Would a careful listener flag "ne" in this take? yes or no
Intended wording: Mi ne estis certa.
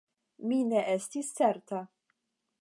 no